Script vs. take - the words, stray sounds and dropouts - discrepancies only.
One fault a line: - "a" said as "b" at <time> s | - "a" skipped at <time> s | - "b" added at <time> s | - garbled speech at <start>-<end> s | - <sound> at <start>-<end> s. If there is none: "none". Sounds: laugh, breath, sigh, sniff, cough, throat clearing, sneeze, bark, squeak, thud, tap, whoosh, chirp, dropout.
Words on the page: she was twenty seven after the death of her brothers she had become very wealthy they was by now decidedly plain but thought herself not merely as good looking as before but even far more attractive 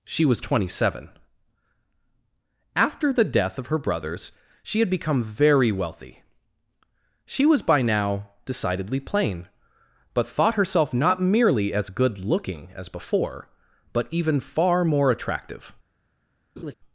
- "they" said as "she" at 7.2 s
- laugh at 16.6-16.7 s